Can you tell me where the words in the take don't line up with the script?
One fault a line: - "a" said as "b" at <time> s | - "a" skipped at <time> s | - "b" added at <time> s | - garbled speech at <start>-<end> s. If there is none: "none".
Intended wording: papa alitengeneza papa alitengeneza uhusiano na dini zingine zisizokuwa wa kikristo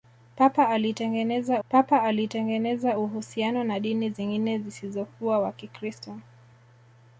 none